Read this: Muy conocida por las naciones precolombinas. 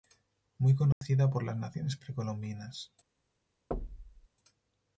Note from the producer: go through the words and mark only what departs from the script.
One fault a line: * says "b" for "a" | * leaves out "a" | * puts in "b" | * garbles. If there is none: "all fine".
all fine